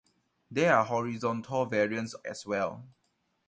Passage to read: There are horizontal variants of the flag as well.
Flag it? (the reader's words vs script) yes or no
yes